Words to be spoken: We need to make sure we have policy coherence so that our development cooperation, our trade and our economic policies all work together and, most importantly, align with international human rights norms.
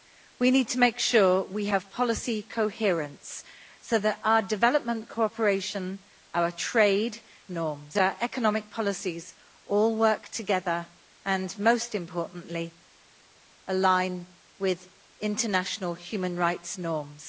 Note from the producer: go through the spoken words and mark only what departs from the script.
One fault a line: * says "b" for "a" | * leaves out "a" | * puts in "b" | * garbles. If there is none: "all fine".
* says "norms" for "and"